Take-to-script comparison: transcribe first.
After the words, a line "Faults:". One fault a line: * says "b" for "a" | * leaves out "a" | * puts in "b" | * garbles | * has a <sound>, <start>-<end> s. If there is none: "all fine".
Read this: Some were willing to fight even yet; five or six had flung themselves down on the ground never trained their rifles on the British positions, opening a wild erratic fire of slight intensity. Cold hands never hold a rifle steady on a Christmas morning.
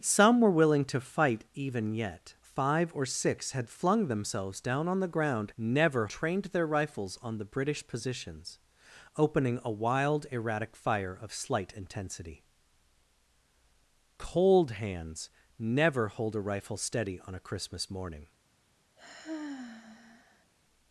Some were willing to fight even yet; five or six had flung themselves down on the ground never trained their rifles on the British positions, opening a wild erratic fire of slight intensity. Cold hands never hold a rifle steady on a Christmas morning.
Faults:
* has a sigh, 19.0-20.5 s